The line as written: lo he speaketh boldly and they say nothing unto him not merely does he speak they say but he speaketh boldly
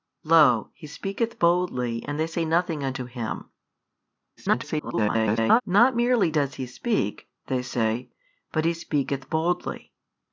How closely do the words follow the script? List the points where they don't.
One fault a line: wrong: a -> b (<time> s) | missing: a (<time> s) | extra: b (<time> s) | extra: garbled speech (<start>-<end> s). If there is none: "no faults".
extra: garbled speech (4.4-5.6 s)